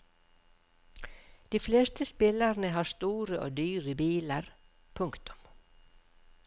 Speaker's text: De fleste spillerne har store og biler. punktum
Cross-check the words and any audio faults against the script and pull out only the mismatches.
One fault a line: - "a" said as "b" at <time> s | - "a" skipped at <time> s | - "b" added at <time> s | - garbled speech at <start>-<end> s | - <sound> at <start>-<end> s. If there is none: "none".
- "dyre" added at 3.6 s